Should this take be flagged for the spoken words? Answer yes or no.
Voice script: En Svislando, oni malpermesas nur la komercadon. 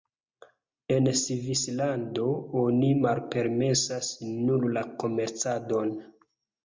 no